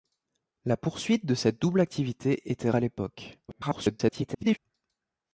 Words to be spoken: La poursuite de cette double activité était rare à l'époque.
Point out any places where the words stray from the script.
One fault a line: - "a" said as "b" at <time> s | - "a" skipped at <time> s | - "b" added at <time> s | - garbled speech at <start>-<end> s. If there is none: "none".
- "rare" skipped at 2.7 s
- garbled speech at 3.5-4.6 s